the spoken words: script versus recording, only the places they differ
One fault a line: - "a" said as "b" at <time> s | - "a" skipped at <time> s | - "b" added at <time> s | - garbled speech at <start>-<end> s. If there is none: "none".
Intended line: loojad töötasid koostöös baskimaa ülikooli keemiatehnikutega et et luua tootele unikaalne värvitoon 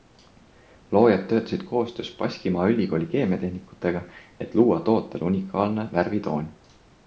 - "et" skipped at 4.5 s